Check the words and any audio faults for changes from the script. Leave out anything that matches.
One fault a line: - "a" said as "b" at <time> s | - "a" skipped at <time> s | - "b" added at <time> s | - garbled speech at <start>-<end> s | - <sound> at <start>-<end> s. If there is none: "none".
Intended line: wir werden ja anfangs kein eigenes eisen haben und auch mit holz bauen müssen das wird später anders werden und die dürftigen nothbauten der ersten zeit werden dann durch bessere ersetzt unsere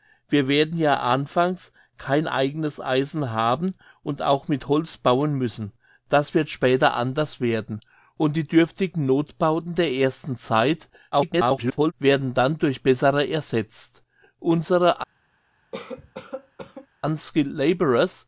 - garbled speech at 11.1-11.9 s
- cough at 15.7-16.9 s